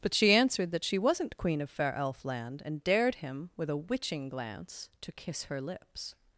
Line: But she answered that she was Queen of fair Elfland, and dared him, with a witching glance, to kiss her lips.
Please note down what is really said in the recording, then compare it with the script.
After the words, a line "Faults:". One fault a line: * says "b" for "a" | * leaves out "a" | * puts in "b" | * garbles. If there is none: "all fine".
But she answered that she wasn't Queen of fair Elfland, and dared him, with a witching glance, to kiss her lips.
Faults:
* says "wasn't" for "was"